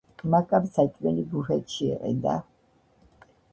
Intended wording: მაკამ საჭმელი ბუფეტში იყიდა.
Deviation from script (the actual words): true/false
false